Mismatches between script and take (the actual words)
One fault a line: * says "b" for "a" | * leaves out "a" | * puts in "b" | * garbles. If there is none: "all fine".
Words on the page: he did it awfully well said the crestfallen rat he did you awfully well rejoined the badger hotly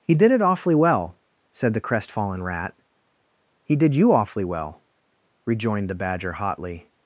all fine